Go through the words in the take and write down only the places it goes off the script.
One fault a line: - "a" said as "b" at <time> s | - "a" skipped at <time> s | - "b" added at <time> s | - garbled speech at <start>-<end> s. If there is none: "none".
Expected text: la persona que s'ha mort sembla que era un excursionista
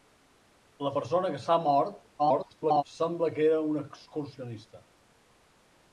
- garbled speech at 2.2-2.8 s